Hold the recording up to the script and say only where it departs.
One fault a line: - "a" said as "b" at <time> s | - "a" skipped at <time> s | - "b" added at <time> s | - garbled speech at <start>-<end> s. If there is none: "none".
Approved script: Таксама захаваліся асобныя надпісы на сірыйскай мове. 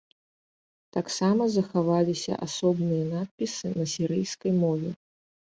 none